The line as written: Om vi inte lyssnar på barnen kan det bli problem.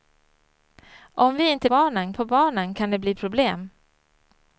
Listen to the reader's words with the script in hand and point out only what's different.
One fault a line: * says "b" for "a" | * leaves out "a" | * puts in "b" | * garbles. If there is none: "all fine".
* says "barnen" for "lyssnar"